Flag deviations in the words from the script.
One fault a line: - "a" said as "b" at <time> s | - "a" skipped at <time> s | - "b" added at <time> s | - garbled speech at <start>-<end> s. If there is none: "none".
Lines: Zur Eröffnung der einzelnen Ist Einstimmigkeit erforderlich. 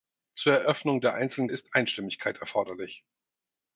none